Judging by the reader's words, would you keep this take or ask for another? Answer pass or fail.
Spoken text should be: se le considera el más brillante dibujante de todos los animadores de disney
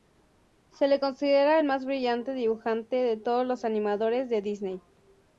pass